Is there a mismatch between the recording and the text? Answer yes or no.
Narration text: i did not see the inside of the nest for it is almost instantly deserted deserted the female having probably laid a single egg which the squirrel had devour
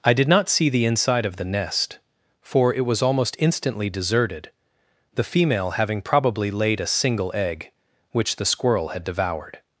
yes